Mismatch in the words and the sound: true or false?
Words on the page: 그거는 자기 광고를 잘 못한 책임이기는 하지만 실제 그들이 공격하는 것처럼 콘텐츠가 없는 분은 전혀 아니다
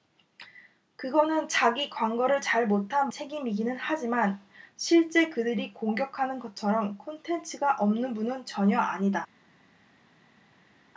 false